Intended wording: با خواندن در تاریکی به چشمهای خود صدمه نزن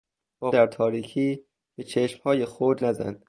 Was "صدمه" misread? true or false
true